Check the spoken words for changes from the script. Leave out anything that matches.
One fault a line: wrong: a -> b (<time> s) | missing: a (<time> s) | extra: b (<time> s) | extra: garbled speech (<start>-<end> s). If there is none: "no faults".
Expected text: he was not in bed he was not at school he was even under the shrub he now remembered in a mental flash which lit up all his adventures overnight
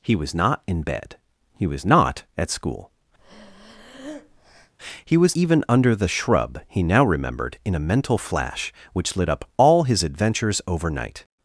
no faults